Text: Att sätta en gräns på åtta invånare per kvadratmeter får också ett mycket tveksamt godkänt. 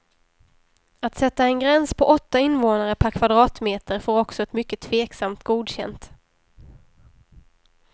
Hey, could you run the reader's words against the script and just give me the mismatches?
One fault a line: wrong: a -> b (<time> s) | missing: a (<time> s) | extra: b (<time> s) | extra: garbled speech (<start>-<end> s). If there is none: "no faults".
no faults